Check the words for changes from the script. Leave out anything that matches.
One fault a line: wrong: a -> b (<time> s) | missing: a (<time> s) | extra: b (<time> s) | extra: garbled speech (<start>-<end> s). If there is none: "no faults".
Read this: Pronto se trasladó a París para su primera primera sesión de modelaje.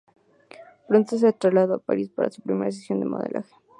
missing: primera (2.7 s)